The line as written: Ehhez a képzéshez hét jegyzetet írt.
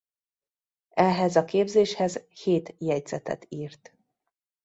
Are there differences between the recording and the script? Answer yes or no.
no